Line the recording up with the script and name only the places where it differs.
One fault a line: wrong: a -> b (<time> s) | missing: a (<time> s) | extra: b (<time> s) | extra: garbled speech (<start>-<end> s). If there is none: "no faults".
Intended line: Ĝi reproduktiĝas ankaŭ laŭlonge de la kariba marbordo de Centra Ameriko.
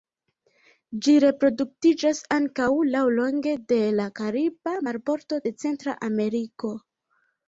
no faults